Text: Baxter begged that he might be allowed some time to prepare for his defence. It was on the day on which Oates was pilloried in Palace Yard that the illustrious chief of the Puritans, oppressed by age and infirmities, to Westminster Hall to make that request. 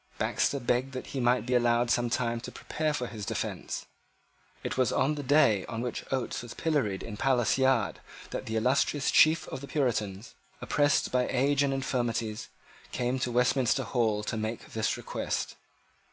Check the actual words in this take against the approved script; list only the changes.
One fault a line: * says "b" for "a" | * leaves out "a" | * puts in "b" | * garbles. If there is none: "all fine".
* puts in "came"
* says "this" for "that"